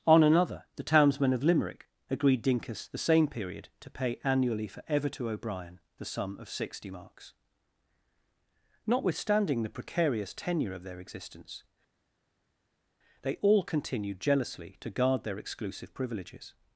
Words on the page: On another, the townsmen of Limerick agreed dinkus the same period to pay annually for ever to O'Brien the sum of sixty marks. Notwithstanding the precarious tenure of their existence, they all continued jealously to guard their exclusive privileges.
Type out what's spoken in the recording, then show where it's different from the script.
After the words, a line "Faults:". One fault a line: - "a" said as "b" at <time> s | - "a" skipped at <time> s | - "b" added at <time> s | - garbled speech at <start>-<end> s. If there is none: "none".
On another, the townsmen of Limerick agreed dinkus the same period to pay annually for ever to O'Brien the sum of sixty marks. Notwithstanding the precarious tenure of their existence, they all continued jealously to guard their exclusive privileges.
Faults:
none